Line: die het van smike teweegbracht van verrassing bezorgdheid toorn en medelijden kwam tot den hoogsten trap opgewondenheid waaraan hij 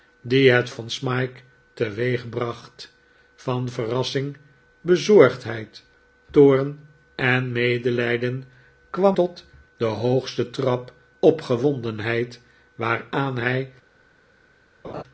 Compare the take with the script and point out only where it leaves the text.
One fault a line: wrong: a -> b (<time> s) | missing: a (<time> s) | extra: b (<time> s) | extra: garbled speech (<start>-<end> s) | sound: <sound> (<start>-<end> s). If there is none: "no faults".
sound: laugh (14.8-15.0 s)